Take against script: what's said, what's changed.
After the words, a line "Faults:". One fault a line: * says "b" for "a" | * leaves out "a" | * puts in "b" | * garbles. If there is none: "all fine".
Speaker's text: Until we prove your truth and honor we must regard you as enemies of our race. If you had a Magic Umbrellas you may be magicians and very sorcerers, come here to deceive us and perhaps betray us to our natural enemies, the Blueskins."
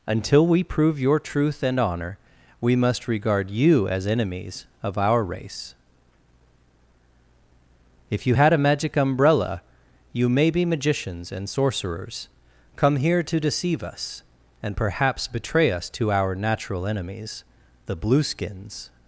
Until we prove your truth and honor we must regard you as enemies of our race. If you had a Magic Umbrella you may be magicians and sorcerers, come here to deceive us and perhaps betray us to our natural enemies, the Blueskins."
Faults:
* says "Umbrella" for "Umbrellas"
* leaves out "very"